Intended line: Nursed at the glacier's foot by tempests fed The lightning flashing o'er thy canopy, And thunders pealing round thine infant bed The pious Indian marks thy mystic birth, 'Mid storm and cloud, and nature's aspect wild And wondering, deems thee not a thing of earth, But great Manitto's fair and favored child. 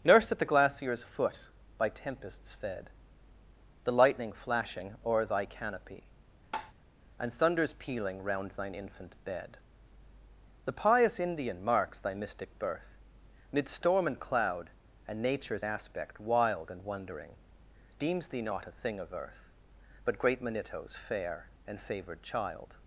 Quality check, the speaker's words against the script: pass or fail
pass